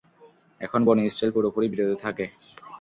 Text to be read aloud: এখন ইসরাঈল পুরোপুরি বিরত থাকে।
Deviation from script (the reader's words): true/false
true